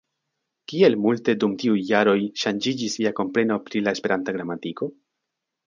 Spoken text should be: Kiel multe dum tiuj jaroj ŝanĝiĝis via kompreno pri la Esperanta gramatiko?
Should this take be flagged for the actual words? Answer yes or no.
no